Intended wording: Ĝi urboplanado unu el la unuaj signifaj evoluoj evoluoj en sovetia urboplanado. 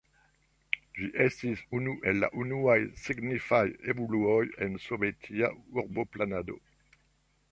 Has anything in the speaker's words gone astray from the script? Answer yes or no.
yes